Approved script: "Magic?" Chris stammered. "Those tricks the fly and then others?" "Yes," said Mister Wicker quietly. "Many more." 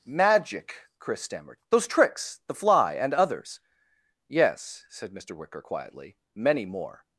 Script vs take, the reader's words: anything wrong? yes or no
yes